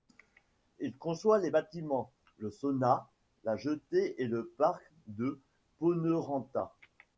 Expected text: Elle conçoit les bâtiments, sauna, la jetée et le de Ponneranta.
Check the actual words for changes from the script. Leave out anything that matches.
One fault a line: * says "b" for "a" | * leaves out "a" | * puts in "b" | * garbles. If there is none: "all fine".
* says "Il" for "Elle"
* puts in "le"
* puts in "parc"